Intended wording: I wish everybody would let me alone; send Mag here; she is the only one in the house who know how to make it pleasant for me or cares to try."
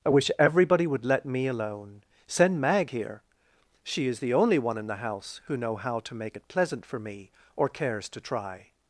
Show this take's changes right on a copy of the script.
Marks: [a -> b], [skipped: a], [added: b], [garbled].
I wish everybody would let me alone; send Mag here; she is the only one in the house who know how to make it pleasant for me or cares to try."